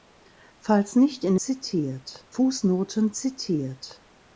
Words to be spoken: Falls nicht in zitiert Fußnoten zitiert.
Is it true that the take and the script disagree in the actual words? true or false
false